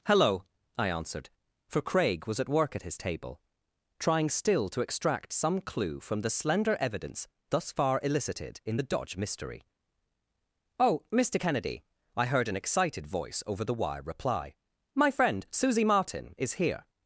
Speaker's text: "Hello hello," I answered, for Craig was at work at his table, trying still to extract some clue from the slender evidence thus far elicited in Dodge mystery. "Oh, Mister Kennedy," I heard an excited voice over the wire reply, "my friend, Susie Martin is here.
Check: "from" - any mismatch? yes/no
no